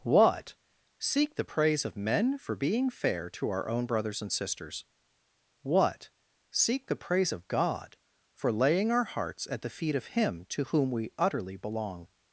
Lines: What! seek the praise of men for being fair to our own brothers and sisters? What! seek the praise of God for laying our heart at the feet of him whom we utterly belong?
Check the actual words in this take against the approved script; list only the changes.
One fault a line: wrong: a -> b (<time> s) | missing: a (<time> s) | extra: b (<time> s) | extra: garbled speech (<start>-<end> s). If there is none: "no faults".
wrong: heart -> hearts (9.0 s)
extra: to (10.5 s)